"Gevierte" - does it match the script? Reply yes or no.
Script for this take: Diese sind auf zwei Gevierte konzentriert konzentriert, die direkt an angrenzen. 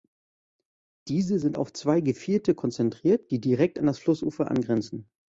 yes